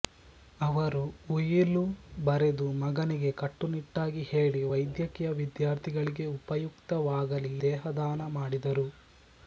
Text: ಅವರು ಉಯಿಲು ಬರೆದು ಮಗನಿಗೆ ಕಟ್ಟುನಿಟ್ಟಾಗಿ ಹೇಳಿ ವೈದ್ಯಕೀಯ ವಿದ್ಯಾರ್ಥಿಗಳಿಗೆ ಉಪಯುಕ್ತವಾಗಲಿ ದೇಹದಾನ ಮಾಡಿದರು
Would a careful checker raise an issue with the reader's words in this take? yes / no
no